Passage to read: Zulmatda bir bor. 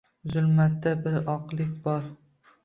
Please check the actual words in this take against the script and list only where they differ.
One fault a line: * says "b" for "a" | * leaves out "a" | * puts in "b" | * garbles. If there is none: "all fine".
* puts in "oqlik"